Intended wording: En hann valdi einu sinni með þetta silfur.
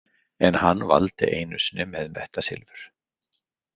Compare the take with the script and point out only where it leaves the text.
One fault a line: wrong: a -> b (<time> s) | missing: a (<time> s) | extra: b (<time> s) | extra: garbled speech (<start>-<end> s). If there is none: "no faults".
no faults